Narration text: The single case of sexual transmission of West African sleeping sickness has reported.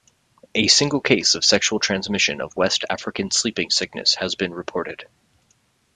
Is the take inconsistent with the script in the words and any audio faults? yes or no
yes